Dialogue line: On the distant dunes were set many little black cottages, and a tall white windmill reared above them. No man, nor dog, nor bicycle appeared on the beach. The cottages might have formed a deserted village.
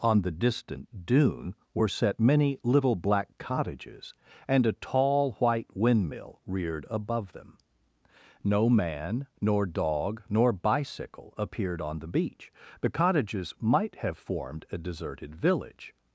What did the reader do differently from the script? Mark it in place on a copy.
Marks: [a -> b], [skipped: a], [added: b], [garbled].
On the distant [dunes -> dune] were set many little black cottages, and a tall white windmill reared above them. No man, nor dog, nor bicycle appeared on the beach. The cottages might have formed a deserted village.